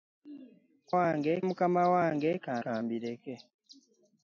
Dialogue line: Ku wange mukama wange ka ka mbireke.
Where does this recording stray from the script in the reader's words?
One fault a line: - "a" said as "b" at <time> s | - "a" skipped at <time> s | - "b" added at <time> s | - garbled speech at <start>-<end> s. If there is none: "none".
none